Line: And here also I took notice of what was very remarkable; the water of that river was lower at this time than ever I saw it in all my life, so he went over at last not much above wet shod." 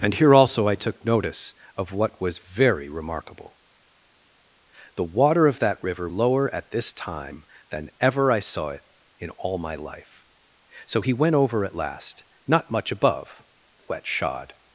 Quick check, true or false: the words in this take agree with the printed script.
false